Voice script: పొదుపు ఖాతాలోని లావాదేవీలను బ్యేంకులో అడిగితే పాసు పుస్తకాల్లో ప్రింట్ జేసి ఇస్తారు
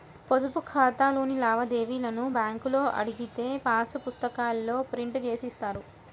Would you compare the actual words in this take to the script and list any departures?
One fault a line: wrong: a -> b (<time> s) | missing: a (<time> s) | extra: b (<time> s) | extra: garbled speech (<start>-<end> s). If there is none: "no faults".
no faults